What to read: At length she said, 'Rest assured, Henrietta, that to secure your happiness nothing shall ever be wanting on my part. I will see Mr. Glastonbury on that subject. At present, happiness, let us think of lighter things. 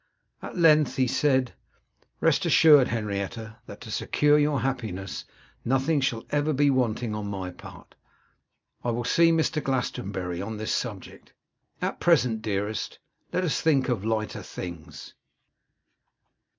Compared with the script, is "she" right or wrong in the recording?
wrong